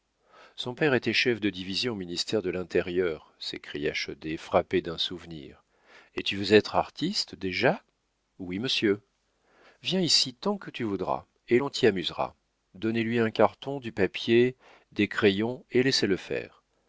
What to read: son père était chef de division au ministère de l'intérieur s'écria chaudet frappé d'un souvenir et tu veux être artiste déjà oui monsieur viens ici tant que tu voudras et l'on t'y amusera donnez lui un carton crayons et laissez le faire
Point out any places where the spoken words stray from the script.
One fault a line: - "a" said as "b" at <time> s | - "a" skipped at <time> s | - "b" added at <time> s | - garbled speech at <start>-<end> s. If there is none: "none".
- "du papier des" added at 13.8 s